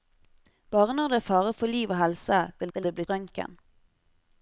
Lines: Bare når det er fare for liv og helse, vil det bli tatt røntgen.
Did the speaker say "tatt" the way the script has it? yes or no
no